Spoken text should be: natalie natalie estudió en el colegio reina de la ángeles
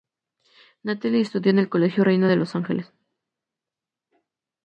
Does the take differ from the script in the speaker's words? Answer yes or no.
yes